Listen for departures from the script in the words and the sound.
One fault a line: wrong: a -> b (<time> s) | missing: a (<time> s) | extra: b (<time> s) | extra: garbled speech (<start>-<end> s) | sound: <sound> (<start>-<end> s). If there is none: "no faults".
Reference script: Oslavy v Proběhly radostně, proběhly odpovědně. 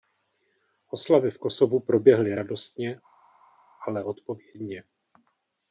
extra: Kosovu (1.4 s)
wrong: proběhly -> ale (3.9 s)